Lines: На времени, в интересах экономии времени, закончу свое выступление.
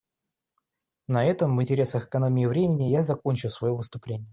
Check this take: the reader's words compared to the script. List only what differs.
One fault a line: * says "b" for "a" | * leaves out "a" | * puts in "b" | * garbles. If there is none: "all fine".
* says "этом" for "времени"
* puts in "я"